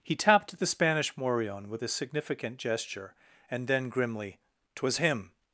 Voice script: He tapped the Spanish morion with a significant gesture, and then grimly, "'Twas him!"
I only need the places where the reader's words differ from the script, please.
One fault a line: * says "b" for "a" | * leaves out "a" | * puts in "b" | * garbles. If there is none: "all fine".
all fine